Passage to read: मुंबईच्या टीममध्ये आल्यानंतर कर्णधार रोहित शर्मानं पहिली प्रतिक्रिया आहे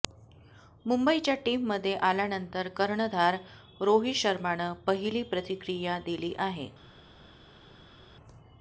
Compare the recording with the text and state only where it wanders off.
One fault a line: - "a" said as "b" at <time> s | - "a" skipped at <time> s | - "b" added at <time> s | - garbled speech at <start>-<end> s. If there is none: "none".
- "दिली" added at 6.0 s